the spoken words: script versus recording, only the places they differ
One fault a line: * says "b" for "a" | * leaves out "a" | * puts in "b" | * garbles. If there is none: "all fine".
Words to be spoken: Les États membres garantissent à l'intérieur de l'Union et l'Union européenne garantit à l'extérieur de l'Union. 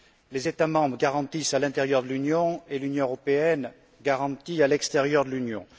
all fine